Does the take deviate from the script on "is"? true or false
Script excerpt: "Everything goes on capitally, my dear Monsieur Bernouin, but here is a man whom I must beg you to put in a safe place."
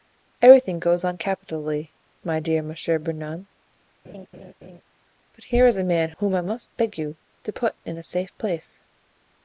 false